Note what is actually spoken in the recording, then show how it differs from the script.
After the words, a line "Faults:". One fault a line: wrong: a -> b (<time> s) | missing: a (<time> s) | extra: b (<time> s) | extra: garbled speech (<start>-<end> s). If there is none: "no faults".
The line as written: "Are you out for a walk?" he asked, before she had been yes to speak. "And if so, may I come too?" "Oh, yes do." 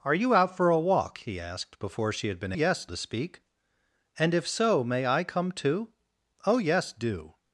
"Are you out for a walk?" he asked, before she had been yes to speak. "And if so, may I come too?" "Oh, yes do."
Faults:
no faults